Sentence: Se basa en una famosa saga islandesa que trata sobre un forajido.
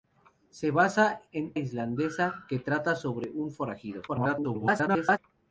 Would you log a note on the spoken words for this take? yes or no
yes